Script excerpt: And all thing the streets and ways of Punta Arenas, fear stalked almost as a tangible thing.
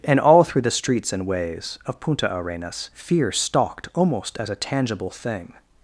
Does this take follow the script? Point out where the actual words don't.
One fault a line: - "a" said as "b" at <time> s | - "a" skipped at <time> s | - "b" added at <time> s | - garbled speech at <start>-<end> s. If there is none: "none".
- "thing" said as "through" at 0.4 s